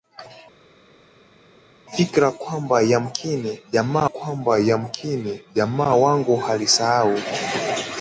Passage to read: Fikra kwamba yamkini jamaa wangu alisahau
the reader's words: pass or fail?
fail